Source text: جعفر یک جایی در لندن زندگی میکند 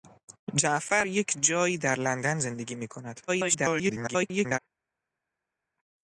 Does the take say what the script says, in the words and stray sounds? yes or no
no